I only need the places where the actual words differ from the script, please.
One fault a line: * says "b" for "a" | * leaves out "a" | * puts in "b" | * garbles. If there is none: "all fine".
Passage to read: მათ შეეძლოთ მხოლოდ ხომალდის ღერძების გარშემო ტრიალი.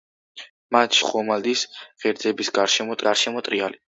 * leaves out "შეეძლოთ მხოლოდ"
* puts in "გარშემო"